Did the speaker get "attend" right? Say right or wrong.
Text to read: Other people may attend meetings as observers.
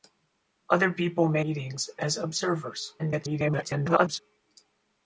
wrong